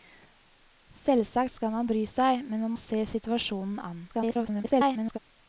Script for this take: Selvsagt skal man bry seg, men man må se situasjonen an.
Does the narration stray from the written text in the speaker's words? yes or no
yes